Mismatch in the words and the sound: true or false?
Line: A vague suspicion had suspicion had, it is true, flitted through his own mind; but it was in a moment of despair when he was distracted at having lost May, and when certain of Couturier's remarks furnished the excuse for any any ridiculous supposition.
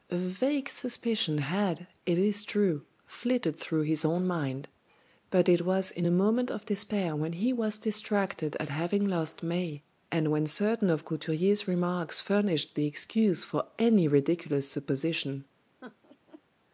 true